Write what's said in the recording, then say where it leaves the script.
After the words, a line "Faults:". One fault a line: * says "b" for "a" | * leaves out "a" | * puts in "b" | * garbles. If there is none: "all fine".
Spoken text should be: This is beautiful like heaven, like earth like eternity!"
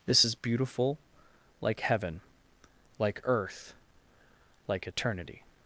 This is beautiful like heaven, like earth like eternity!"
Faults:
all fine